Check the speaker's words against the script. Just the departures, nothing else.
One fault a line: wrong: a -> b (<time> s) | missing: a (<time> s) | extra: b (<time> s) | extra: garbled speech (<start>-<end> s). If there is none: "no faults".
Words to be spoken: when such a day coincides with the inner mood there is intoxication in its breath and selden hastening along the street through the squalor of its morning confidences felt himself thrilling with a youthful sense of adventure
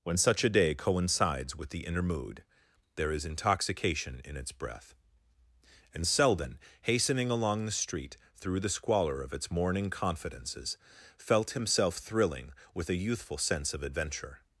no faults